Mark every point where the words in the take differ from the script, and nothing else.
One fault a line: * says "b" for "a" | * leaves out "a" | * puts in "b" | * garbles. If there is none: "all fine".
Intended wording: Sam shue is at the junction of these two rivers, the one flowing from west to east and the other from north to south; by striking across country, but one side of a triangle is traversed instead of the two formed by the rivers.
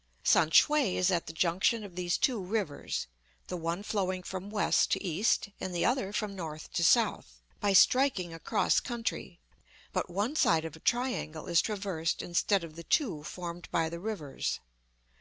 all fine